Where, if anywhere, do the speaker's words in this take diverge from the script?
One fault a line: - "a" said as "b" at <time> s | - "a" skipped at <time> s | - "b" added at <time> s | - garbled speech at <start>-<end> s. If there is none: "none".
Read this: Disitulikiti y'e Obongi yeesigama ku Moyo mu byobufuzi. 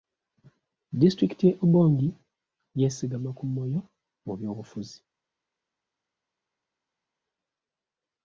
none